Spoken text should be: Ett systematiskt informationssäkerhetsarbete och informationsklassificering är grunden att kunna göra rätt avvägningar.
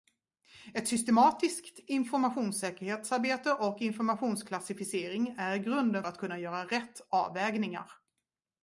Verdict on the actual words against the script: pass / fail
pass